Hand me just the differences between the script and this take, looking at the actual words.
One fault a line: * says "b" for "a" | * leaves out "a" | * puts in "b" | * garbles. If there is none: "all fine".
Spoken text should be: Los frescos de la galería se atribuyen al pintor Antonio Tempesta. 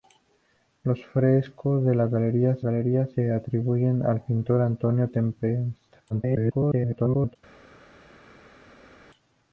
* puts in "galería"
* garbles